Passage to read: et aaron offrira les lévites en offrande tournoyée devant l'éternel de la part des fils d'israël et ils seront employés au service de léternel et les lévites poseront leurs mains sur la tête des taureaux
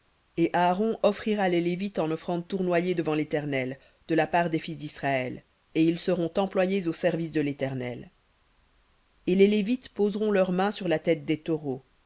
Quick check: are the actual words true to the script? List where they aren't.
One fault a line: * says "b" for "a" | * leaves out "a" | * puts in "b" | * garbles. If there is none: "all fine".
all fine